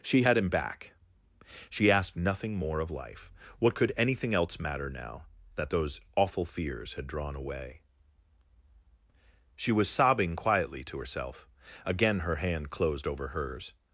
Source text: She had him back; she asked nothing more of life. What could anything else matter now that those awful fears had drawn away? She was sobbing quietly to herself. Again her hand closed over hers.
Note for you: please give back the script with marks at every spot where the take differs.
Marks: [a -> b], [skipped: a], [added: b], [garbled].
She had him back; she asked nothing more of life. What could anything else matter now that those awful fears had drawn away? She was sobbing quietly to herself. Again her hand closed over hers.